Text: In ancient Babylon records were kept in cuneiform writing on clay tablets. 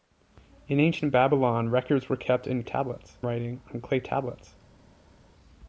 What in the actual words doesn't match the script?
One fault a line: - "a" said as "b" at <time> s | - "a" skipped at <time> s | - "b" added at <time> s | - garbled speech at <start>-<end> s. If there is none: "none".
- "cuneiform" said as "tablets" at 2.6 s